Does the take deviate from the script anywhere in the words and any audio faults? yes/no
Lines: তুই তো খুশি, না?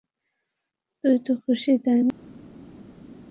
yes